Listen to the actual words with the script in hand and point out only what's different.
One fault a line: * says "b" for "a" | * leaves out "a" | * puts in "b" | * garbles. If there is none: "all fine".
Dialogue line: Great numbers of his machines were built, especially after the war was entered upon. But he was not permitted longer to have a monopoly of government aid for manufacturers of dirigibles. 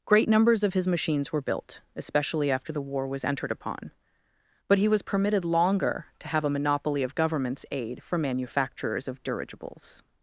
* leaves out "not"
* says "governments" for "government"